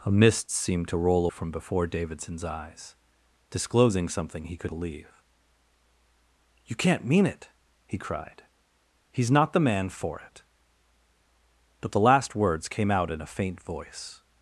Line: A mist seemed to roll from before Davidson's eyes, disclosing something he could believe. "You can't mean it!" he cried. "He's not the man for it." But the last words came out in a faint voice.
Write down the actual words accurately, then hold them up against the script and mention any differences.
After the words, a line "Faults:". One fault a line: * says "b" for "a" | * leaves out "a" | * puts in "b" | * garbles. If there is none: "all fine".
A mist seemed to roll from before Davidson's eyes, disclosing something he could believe. "You can't mean it!" he cried. "He's not the man for it." But the last words came out in a faint voice.
Faults:
all fine